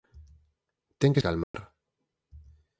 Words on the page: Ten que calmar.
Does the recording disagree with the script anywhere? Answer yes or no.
no